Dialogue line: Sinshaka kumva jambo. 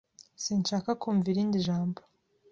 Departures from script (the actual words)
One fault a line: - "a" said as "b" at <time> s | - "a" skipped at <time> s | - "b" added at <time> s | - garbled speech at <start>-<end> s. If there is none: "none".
- "irindi" added at 1.3 s